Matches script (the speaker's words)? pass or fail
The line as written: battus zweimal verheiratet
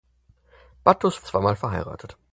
pass